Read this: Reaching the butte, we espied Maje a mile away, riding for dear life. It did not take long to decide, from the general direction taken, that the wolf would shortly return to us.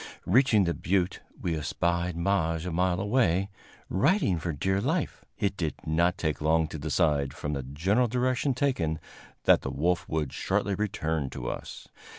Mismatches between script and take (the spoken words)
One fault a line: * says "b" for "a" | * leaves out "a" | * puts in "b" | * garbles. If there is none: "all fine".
all fine